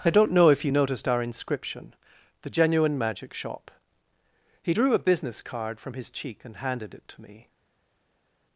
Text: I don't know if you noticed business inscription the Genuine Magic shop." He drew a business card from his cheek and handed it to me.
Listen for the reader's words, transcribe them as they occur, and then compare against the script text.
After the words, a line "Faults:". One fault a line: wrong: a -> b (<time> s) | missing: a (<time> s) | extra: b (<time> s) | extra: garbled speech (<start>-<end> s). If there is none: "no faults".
I don't know if you noticed our inscription the Genuine Magic shop." He drew a business card from his cheek and handed it to me.
Faults:
wrong: business -> our (1.1 s)